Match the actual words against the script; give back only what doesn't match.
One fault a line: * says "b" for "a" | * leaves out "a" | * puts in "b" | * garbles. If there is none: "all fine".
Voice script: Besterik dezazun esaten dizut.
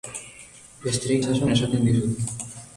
all fine